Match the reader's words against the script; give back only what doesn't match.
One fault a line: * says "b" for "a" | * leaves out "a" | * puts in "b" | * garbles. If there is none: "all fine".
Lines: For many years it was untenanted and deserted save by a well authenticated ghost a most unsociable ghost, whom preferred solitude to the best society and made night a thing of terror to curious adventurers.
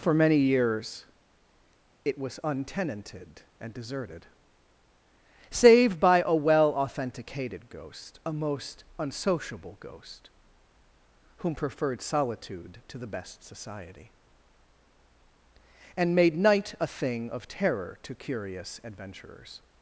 all fine